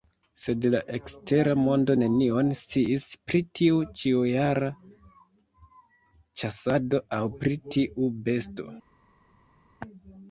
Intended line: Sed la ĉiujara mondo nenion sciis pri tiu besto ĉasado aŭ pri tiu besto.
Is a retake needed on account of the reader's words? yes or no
yes